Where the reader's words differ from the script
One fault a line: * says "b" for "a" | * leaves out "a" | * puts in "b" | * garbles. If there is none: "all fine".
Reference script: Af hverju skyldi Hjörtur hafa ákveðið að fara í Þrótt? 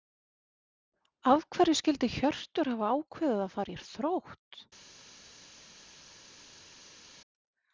all fine